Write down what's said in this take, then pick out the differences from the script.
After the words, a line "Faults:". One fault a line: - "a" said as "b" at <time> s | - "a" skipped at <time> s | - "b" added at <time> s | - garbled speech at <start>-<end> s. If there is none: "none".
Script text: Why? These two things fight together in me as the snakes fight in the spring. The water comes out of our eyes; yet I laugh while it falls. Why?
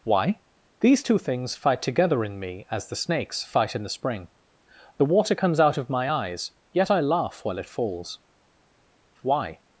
Why? These two things fight together in me as the snakes fight in the spring. The water comes out of my eyes; yet I laugh while it falls. Why?
Faults:
- "our" said as "my" at 5.9 s